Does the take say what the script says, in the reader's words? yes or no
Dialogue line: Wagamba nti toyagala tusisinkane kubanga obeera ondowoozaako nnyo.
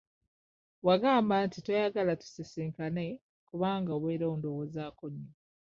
yes